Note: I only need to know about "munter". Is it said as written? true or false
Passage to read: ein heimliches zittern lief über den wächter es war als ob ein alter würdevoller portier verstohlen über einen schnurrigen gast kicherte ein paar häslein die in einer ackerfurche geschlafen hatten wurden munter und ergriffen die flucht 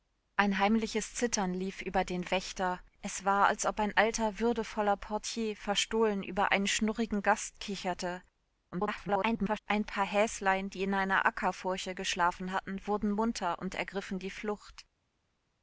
true